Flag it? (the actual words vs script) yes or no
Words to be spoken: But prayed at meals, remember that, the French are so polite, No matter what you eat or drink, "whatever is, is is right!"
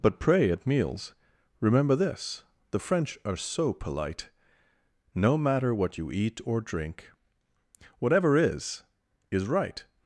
yes